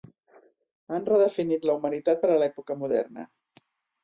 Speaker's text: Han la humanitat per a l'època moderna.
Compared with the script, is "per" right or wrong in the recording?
right